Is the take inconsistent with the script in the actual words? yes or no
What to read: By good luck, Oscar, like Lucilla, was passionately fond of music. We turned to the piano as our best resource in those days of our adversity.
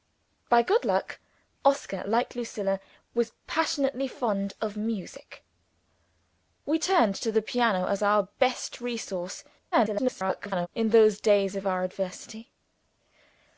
yes